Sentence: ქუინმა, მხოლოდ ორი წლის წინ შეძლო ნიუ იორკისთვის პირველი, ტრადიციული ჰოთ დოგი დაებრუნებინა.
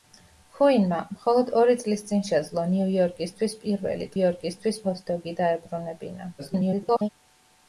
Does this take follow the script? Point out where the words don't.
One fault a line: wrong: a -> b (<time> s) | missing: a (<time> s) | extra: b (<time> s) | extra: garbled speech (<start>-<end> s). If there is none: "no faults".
wrong: ტრადიციული -> იორკისთვის (4.2 s)
extra: garbled speech (6.4-7.1 s)